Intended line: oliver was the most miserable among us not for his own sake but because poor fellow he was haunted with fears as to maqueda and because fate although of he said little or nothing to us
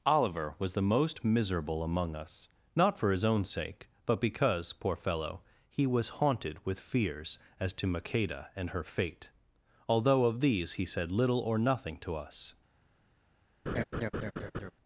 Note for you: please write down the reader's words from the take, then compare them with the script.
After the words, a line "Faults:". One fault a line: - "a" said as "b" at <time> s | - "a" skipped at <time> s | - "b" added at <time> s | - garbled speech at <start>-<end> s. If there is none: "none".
oliver was the most miserable among us not for his own sake but because poor fellow he was haunted with fears as to maqueda and her fate although of these he said little or nothing to us
Faults:
- "because" said as "her" at 8.7 s
- "these" added at 10.4 s